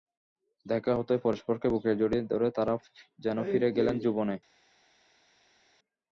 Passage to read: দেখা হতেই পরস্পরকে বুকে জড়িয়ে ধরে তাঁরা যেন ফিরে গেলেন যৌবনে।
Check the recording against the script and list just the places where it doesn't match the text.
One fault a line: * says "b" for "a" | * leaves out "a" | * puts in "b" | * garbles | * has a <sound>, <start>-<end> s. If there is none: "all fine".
all fine